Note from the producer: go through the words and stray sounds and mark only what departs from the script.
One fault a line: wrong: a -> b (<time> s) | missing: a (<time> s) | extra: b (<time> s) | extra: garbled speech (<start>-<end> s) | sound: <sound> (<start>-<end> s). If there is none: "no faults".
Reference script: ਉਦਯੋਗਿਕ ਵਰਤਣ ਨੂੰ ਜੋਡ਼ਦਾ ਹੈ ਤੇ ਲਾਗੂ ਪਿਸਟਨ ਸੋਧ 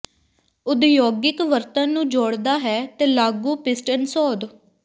no faults